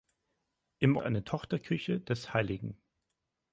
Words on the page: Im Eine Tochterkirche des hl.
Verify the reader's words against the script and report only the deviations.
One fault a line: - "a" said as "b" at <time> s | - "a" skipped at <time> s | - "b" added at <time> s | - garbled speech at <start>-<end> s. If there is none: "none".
none